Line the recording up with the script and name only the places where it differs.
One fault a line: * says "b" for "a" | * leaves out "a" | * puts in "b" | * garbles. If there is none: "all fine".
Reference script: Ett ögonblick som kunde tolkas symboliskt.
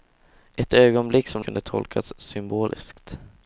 all fine